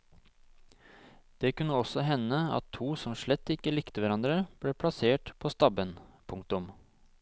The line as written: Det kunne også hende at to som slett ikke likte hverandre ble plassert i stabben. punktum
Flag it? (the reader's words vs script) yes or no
yes